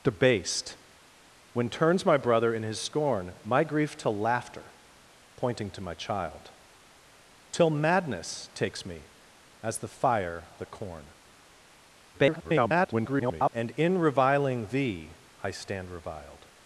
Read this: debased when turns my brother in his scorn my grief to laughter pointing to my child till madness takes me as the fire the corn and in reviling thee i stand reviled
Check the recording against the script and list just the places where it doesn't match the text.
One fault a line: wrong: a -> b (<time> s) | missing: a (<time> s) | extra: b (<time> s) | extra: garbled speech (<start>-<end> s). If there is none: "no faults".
extra: garbled speech (12.1-13.5 s)